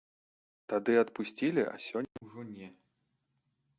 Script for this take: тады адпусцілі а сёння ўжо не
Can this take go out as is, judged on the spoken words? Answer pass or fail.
pass